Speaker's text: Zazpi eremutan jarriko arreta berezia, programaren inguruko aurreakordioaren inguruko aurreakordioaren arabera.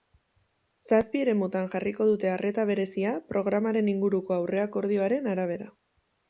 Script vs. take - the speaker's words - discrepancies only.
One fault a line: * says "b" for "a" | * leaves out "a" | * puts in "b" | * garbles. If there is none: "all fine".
* puts in "dute"
* leaves out "inguruko aurreakordioaren"